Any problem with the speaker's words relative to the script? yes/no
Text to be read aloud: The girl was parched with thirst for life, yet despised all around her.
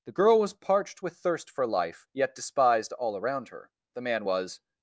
yes